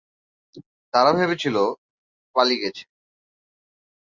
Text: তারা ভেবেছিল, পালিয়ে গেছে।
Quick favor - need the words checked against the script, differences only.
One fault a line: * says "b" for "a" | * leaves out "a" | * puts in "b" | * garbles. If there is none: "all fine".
all fine